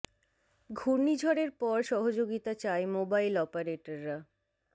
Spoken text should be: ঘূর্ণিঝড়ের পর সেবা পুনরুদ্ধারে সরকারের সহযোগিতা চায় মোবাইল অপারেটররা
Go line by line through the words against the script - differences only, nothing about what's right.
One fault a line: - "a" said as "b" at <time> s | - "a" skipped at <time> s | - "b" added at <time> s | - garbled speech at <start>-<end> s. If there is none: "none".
- "সেবা পুনরুদ্ধারে সরকারের" skipped at 1.8 s